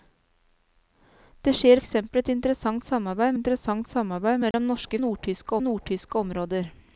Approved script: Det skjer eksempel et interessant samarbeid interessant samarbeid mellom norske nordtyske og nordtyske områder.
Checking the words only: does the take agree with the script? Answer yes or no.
yes